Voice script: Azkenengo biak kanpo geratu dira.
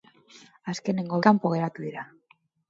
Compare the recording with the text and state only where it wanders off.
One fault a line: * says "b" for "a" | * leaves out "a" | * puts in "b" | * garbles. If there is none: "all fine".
* leaves out "biak"